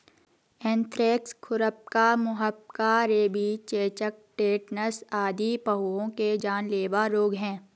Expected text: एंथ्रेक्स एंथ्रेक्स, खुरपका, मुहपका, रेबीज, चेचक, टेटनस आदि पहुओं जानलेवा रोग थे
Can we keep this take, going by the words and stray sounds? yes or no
no